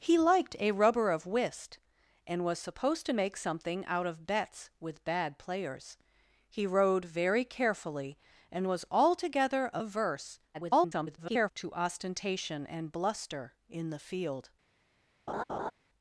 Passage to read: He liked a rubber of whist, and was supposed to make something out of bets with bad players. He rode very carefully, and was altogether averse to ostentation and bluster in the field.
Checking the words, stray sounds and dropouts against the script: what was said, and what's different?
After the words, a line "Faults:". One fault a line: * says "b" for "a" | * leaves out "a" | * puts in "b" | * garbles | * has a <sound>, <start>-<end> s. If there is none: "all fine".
He liked a rubber of whist, and was supposed to make something out of bets with bad players. He rode very carefully, and was altogether averse [garbled] to ostentation and bluster in the field.
Faults:
* garbles
* has a laugh, 15.3-15.7 s